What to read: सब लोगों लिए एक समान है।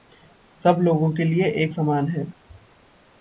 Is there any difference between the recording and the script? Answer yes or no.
yes